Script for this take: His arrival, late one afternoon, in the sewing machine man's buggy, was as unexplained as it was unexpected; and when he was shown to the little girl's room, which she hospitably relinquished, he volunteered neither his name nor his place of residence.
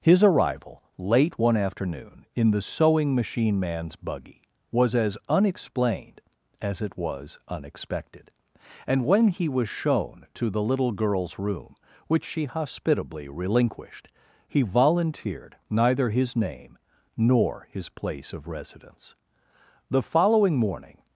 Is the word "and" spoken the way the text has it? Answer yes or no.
yes